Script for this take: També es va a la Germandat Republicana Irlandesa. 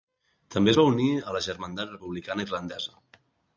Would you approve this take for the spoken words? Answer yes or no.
no